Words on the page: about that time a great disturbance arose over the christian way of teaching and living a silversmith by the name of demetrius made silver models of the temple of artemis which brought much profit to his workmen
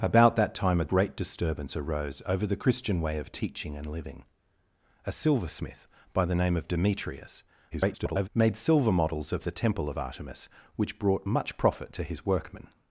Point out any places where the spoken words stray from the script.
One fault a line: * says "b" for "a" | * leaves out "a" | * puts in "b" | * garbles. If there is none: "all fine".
* garbles